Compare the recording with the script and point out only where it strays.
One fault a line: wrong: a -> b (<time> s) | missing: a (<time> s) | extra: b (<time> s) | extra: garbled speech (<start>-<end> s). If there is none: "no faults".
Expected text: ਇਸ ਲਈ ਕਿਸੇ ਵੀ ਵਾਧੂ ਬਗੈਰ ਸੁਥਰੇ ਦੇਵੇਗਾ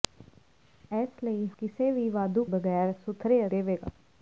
no faults